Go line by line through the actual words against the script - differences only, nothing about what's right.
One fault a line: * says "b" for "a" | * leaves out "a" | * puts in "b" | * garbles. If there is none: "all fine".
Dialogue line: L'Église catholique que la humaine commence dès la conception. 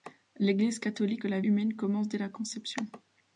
all fine